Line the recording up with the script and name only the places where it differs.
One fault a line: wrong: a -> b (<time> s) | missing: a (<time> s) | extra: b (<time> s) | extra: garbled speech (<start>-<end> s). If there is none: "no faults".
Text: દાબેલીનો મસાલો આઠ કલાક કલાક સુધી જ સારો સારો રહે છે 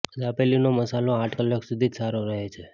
missing: કલાક (1.6 s)
missing: સારો (2.2 s)